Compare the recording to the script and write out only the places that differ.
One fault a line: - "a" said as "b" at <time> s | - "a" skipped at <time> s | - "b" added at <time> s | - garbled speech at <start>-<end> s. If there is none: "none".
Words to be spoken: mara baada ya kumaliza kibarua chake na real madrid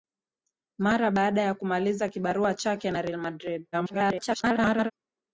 - garbled speech at 3.7-4.9 s